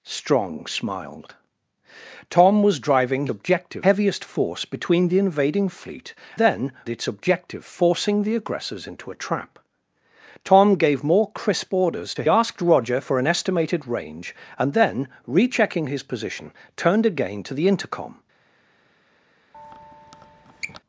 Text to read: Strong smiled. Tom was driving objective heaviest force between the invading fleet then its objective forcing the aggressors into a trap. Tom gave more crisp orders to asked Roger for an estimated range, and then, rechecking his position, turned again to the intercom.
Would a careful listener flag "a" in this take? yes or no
no